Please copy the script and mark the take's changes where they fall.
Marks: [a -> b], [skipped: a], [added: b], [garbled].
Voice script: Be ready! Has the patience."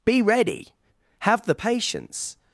Be ready! [Has -> Have] the patience."